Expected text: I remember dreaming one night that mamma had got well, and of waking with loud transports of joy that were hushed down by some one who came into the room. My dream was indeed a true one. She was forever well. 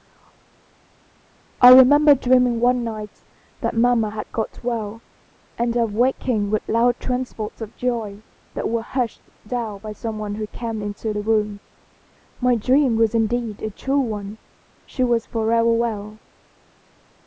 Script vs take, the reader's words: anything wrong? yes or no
no